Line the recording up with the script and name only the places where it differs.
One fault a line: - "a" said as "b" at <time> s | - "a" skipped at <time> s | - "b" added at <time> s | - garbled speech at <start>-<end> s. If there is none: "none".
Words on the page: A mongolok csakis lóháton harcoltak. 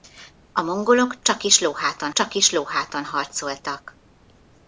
- "csakis lóháton" added at 2.1 s